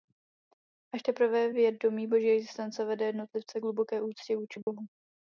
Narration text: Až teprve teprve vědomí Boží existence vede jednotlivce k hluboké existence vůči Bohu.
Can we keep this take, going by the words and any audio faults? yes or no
no